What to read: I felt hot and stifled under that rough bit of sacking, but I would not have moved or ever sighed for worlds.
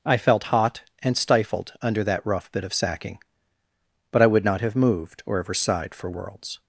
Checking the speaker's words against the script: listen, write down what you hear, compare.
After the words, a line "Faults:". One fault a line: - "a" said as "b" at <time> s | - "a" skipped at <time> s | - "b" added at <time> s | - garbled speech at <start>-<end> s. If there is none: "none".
I felt hot and stifled under that rough bit of sacking, but I would not have moved or ever sighed for worlds.
Faults:
none